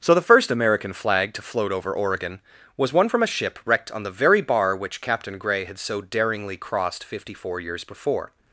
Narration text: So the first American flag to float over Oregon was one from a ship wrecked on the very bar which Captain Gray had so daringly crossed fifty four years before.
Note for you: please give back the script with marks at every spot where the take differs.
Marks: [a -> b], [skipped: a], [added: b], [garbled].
So the first American flag to float over Oregon was one from a ship wrecked on the very bar which Captain Gray had so daringly crossed fifty four years before.